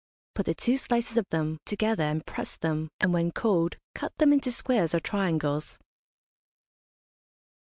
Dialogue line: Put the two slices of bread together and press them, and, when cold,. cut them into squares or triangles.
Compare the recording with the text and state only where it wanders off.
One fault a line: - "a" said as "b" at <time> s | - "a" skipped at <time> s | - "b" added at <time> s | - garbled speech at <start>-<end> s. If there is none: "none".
- "bread" said as "them" at 1.3 s